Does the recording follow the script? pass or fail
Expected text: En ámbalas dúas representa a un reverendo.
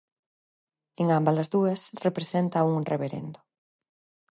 pass